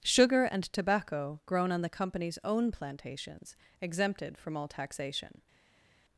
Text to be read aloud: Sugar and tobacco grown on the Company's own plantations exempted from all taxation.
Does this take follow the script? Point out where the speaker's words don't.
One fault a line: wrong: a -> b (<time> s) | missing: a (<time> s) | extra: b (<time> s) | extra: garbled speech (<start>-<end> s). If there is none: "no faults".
no faults